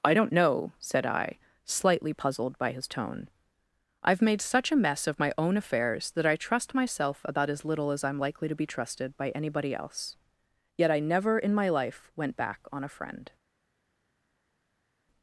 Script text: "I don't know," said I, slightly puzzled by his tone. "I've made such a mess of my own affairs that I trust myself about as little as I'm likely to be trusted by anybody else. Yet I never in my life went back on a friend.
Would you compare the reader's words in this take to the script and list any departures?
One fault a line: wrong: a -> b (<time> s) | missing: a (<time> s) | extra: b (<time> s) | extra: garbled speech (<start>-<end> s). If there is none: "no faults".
no faults